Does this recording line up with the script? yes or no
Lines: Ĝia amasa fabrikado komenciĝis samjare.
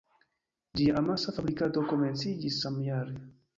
yes